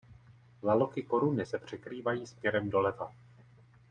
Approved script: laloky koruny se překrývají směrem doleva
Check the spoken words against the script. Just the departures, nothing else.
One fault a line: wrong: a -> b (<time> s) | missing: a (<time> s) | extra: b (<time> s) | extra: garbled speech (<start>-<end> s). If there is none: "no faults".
no faults